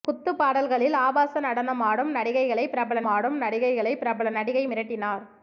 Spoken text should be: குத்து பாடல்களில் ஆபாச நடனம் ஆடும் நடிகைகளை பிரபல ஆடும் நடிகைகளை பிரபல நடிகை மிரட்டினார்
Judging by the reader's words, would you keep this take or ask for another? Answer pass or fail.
pass